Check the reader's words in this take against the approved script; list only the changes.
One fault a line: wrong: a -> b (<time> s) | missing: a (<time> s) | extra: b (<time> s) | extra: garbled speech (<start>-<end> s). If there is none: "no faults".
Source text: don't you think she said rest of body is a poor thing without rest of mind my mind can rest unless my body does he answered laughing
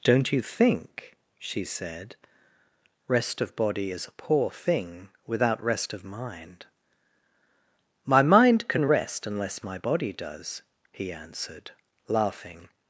no faults